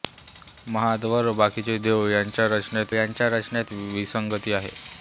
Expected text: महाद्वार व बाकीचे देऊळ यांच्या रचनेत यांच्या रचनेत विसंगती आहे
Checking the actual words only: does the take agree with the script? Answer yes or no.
yes